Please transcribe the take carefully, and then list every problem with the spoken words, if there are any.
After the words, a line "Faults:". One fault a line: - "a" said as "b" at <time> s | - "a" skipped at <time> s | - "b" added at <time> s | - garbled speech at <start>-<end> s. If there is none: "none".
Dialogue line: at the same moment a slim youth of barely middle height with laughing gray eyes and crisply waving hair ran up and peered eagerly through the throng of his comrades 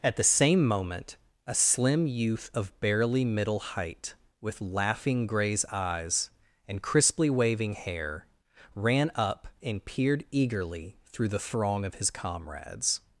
at the same moment a slim youth of barely middle height with laughing grays eyes and crisply waving hair ran up and peered eagerly through the throng of his comrades
Faults:
- "gray" said as "grays" at 5.3 s